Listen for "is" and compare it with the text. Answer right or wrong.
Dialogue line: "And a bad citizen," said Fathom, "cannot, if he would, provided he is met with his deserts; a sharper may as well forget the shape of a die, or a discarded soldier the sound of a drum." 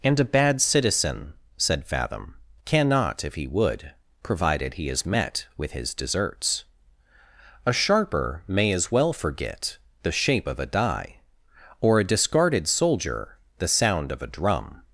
right